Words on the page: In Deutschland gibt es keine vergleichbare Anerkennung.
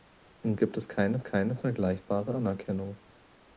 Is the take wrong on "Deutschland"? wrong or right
wrong